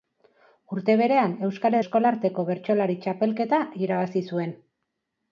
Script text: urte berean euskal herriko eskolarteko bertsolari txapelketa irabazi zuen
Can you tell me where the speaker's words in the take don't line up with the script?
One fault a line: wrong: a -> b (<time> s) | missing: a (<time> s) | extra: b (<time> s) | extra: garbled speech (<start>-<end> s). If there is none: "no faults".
missing: herriko (1.8 s)